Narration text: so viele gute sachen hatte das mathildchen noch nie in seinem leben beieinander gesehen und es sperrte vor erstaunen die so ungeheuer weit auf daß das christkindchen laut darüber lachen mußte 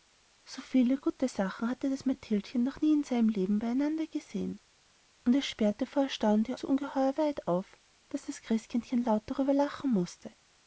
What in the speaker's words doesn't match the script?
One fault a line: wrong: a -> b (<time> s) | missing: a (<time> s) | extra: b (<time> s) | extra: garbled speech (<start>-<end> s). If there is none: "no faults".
no faults